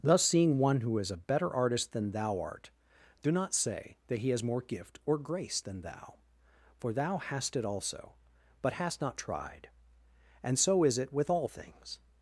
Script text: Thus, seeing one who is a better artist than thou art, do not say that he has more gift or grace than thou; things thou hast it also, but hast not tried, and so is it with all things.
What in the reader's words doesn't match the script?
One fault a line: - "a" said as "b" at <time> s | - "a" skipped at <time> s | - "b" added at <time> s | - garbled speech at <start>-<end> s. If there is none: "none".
- "things" said as "for" at 6.8 s